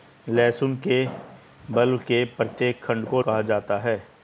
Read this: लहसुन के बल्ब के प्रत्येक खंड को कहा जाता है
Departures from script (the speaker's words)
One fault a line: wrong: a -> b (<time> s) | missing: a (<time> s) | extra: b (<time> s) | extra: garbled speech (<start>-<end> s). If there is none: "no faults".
no faults